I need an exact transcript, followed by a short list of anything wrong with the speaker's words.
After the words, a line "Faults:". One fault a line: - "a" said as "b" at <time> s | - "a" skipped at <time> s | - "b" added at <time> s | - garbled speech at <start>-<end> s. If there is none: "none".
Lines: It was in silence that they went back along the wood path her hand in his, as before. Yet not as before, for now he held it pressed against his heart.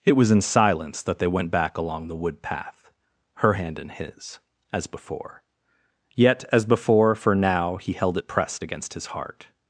It was in silence that they went back along the wood path her hand in his, as before. Yet as before, for now he held it pressed against his heart.
Faults:
- "not" skipped at 6.4 s